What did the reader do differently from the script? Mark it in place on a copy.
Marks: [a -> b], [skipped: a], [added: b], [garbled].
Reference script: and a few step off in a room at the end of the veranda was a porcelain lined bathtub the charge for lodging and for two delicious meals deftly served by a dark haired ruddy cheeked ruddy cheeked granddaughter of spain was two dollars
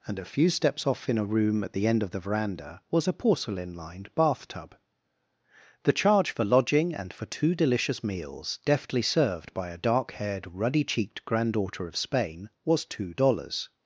and a few [step -> steps] off in a room at the end of the veranda was a porcelain lined bathtub the charge for lodging and for two delicious meals deftly served by a dark haired ruddy cheeked [skipped: ruddy cheeked] granddaughter of spain was two dollars